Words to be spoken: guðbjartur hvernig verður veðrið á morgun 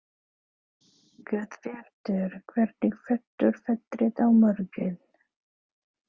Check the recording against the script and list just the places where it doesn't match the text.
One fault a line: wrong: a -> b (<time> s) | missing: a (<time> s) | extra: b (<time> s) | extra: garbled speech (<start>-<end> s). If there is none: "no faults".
no faults